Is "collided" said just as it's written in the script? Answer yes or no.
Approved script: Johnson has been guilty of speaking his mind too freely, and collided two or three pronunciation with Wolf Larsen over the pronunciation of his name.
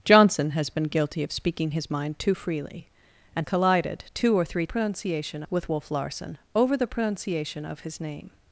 yes